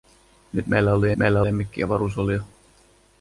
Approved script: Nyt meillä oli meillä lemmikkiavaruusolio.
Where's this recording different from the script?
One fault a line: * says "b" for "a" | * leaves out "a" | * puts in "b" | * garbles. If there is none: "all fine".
all fine